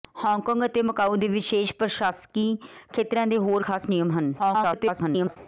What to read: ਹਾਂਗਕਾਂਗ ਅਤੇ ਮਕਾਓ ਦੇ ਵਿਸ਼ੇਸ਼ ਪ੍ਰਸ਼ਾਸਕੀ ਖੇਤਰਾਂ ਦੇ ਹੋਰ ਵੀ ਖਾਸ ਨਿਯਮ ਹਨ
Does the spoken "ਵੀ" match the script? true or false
false